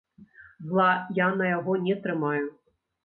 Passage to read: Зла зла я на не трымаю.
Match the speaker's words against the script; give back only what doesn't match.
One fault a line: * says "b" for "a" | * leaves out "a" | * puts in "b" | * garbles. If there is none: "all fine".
* leaves out "зла"
* puts in "яго"